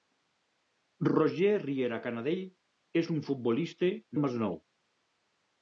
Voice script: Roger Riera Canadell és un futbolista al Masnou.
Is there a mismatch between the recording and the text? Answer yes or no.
no